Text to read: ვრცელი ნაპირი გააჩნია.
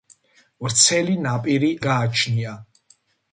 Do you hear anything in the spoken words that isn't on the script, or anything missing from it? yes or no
no